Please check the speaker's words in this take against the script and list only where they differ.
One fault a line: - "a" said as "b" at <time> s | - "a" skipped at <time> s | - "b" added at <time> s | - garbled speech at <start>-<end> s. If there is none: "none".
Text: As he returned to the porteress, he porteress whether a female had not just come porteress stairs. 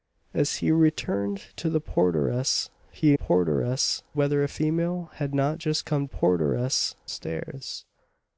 none